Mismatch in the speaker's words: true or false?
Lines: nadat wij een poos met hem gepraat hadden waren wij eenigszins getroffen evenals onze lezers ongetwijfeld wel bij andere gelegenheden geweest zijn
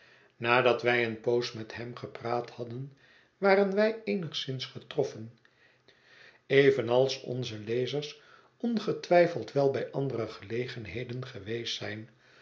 false